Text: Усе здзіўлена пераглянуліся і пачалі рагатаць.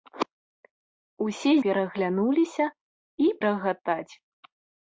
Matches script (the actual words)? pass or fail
fail